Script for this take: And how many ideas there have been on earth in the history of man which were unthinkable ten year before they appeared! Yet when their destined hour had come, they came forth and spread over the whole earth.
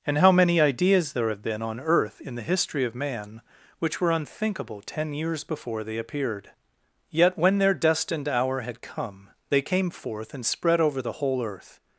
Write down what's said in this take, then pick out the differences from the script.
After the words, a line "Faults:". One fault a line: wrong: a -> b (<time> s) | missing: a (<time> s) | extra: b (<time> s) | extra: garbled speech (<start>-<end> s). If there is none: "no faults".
And how many ideas there have been on earth in the history of man which were unthinkable ten years before they appeared! Yet when their destined hour had come, they came forth and spread over the whole earth.
Faults:
wrong: year -> years (5.1 s)